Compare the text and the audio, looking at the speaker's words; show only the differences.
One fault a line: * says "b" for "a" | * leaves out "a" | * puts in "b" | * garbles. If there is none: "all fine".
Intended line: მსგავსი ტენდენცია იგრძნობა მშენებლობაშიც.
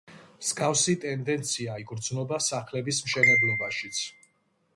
* puts in "სახლების"